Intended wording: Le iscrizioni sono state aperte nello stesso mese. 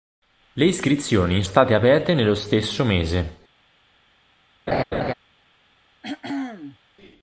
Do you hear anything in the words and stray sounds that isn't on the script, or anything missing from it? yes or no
yes